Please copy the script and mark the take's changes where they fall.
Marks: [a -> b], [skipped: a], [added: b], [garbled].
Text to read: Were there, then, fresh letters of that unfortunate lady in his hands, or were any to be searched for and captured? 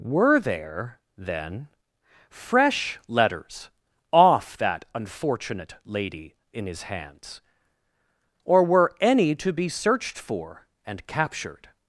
Were there, then, fresh letters [of -> off] that unfortunate lady in his hands, or were any to be searched for and captured?